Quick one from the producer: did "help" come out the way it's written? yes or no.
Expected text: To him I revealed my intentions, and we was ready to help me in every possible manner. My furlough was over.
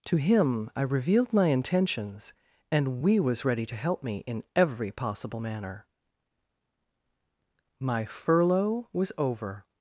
yes